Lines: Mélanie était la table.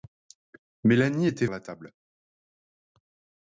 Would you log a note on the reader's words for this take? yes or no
no